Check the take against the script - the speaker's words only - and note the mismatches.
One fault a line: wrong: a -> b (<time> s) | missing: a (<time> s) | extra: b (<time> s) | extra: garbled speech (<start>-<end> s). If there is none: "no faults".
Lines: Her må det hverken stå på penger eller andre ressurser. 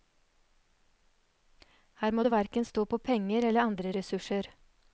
no faults